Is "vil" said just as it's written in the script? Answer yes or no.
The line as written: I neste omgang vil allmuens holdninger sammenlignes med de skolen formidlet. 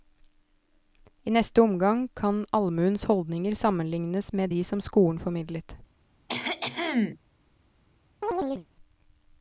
no